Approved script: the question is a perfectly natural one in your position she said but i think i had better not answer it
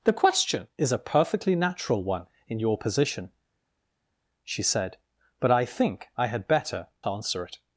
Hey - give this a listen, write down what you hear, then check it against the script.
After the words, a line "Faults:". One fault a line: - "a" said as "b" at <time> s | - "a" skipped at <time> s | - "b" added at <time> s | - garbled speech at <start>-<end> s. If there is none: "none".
the question is a perfectly natural one in your position she said but i think i had better answer it
Faults:
- "not" skipped at 6.9 s